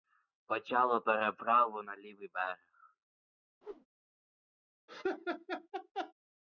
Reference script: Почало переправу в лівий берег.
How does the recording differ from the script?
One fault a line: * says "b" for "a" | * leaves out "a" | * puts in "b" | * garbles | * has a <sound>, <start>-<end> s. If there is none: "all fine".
* says "на" for "в"
* has a whoosh, 3.6-3.9 s
* has a laugh, 4.9-6.1 s